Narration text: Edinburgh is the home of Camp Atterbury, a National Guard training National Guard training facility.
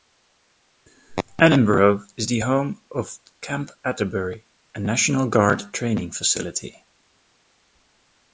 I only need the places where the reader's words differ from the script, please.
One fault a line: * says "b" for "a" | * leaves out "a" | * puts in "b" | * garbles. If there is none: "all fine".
* leaves out "National Guard training"